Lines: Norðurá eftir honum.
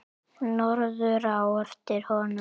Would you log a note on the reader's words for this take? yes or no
no